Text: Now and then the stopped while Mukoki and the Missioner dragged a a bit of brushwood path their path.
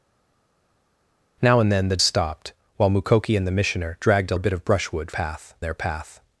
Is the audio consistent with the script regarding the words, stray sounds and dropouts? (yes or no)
yes